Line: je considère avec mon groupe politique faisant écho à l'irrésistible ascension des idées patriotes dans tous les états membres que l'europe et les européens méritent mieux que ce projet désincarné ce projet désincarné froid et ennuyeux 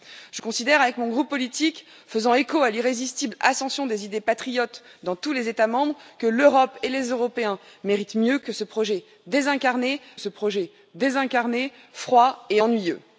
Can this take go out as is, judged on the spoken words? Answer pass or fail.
pass